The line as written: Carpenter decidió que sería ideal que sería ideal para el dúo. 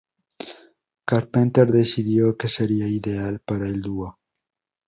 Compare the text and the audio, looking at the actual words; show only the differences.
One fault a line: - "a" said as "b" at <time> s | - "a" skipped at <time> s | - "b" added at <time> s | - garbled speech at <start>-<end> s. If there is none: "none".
- "que sería ideal" skipped at 3.4 s